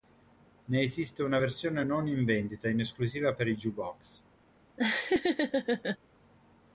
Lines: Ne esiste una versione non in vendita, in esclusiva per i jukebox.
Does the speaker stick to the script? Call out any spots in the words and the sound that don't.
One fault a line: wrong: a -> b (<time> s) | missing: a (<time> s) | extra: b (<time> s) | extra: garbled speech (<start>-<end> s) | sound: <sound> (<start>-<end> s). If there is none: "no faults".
sound: laugh (4.8-6.0 s)